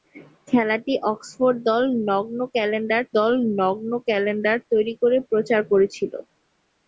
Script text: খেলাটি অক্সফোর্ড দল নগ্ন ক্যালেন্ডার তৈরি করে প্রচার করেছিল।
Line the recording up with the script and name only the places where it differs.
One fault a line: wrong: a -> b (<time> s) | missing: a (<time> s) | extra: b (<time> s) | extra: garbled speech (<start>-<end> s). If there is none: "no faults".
extra: দল নগ্ন ক্যালেন্ডার (3.2 s)